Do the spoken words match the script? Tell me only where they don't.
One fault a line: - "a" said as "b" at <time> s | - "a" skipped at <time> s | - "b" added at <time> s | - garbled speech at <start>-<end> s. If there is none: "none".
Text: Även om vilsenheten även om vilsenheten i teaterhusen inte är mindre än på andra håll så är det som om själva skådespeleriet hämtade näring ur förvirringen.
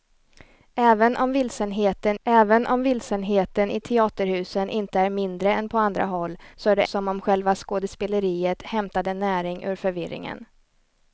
none